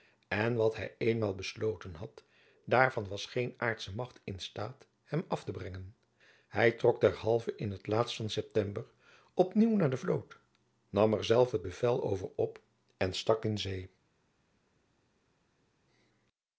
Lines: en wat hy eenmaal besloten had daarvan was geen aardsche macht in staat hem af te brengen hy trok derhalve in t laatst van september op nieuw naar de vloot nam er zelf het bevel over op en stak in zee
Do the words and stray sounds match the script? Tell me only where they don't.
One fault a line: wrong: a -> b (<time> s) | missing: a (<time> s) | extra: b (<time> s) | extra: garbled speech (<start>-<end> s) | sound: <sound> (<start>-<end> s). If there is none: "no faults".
no faults